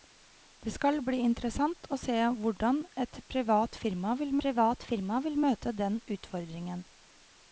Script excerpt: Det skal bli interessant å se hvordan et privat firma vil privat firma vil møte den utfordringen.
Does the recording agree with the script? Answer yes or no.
yes